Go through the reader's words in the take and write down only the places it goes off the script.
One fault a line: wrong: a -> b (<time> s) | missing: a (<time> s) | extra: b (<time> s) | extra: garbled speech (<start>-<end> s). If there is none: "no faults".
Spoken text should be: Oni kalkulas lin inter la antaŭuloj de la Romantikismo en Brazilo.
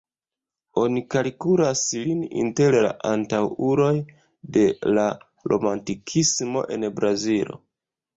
no faults